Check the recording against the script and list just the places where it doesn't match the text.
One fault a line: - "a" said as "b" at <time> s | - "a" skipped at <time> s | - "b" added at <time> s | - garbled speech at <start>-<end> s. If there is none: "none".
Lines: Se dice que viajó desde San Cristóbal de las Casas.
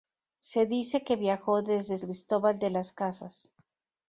- "San" skipped at 2.0 s